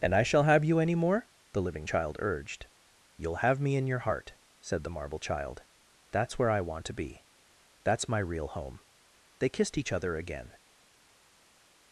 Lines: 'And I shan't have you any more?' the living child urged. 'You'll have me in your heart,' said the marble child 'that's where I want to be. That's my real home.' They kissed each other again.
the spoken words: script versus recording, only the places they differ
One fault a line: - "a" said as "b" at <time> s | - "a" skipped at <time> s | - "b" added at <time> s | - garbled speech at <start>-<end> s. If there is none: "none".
- "shan't" said as "shall" at 0.2 s